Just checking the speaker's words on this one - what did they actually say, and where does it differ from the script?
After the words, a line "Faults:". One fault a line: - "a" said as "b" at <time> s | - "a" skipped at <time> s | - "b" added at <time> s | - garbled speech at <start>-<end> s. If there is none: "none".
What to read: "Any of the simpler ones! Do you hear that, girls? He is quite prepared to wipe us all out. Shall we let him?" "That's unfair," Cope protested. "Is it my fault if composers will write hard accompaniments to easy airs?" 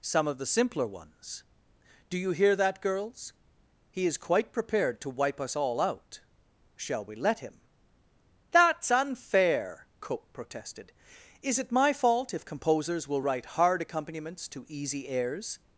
"Some of the simpler ones! Do you hear that, girls? He is quite prepared to wipe us all out. Shall we let him?" "That's unfair," Cope protested. "Is it my fault if composers will write hard accompaniments to easy airs?"
Faults:
- "Any" said as "Some" at 0.0 s